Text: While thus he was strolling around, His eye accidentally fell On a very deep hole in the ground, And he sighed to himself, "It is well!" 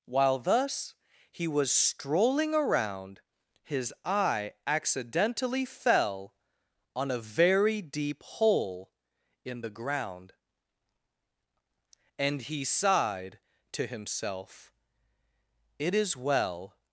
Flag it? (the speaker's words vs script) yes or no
no